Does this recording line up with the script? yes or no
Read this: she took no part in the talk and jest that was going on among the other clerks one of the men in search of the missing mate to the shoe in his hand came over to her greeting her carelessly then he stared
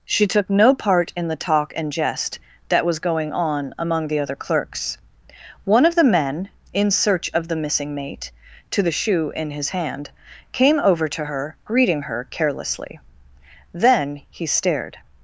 yes